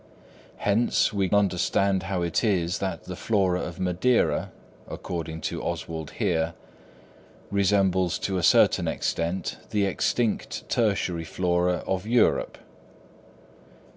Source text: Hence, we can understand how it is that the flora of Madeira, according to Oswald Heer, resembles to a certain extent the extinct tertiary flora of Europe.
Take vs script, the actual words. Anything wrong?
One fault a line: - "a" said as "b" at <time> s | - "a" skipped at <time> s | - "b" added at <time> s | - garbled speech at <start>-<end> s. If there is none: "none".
- "can" skipped at 1.3 s